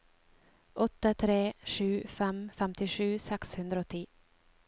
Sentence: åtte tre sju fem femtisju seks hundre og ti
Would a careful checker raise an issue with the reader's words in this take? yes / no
no